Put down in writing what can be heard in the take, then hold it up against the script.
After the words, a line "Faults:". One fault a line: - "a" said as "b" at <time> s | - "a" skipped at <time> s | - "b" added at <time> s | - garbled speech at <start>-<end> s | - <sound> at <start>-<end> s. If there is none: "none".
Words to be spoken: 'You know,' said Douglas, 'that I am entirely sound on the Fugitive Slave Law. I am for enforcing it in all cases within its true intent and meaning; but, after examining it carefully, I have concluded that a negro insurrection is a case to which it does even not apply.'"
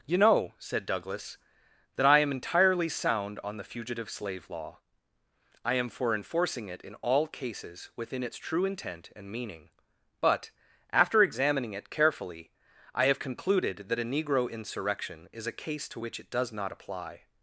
'You know,' said Douglas, 'that I am entirely sound on the Fugitive Slave Law. I am for enforcing it in all cases within its true intent and meaning; but, after examining it carefully, I have concluded that a negro insurrection is a case to which it does not apply.'"
Faults:
- "even" skipped at 16.5 s